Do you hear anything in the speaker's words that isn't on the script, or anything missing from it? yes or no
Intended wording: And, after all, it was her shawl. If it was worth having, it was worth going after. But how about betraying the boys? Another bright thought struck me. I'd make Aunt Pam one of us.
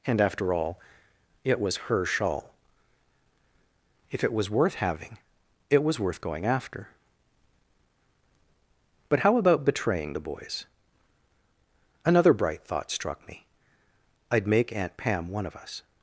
no